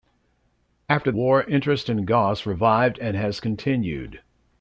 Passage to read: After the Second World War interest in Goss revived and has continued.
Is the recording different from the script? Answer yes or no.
yes